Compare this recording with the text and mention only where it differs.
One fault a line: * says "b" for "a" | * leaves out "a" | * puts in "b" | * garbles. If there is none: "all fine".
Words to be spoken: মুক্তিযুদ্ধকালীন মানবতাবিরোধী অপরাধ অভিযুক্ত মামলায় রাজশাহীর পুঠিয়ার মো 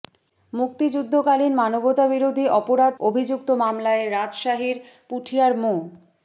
all fine